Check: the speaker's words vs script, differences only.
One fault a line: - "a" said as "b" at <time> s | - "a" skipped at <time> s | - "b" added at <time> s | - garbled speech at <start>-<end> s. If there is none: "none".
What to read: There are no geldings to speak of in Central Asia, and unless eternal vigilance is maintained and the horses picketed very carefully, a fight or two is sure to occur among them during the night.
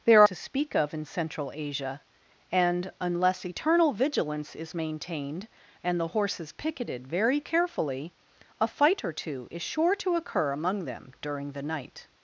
- "are no geldings" skipped at 0.2 s